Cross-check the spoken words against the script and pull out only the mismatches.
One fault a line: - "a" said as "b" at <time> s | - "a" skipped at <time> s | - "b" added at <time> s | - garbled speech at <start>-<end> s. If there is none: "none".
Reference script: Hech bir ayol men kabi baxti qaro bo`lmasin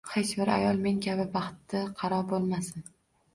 none